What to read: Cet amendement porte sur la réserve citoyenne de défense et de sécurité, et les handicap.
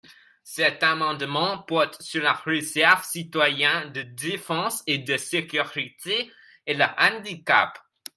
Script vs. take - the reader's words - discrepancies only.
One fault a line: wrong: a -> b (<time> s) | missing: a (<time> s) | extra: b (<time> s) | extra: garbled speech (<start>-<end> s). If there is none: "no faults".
wrong: les -> le (6.7 s)